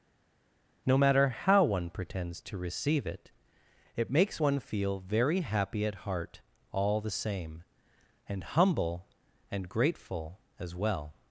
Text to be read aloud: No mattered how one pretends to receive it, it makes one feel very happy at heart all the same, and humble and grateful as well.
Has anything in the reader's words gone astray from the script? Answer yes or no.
yes